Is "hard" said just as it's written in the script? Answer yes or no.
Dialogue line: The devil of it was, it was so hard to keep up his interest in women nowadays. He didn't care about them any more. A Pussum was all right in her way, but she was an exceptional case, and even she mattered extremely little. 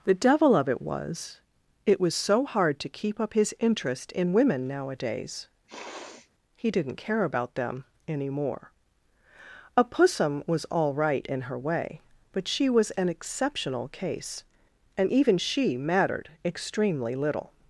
yes